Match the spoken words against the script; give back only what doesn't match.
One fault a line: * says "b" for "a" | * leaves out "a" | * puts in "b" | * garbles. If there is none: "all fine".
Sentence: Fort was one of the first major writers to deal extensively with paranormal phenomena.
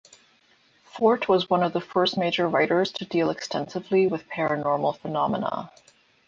all fine